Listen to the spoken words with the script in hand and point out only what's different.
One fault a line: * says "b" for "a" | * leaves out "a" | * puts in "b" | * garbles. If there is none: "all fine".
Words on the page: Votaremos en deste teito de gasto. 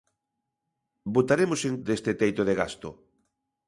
all fine